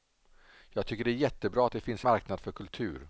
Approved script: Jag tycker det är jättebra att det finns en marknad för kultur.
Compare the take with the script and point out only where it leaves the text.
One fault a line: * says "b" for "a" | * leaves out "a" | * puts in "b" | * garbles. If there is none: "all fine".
* leaves out "en"